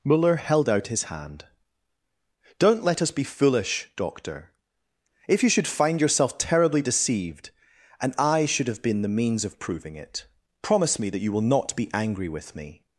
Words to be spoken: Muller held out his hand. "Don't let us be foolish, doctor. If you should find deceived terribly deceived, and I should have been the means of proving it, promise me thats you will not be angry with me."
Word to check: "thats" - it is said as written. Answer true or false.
false